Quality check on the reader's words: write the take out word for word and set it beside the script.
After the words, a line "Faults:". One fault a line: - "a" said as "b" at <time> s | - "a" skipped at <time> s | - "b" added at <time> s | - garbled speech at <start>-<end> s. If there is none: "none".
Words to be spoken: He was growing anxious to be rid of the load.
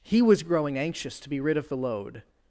He was growing anxious to be rid of the load.
Faults:
none